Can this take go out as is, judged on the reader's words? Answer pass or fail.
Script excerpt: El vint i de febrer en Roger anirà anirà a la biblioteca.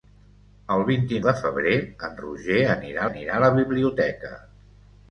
pass